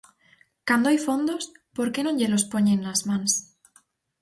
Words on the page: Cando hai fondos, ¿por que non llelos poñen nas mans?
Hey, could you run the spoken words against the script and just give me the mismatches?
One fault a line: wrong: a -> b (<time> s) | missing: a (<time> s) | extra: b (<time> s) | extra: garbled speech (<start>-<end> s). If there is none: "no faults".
no faults